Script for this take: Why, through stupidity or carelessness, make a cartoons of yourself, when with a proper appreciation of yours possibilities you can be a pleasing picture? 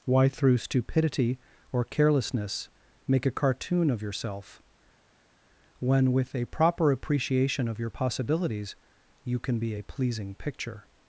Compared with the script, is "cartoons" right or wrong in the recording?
wrong